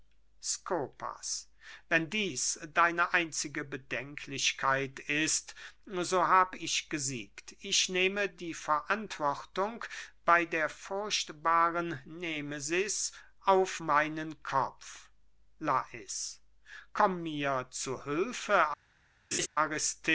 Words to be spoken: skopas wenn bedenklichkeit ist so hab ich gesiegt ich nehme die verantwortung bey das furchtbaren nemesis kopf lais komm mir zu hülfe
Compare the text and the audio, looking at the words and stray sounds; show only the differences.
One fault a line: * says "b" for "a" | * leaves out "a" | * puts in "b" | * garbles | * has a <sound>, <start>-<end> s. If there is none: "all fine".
* puts in "dieß deine einzige"
* says "der" for "das"
* puts in "auf meinen"
* has a laugh, 19.3-19.5 s